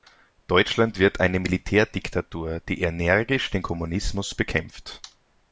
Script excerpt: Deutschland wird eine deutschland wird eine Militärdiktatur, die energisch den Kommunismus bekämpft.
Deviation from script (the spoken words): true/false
true